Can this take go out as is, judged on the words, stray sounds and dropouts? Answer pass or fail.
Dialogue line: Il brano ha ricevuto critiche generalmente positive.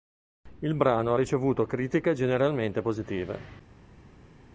pass